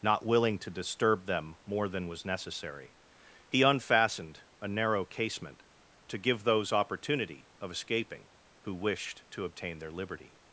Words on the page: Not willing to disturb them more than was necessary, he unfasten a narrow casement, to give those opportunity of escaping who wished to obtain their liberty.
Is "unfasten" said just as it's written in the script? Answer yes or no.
no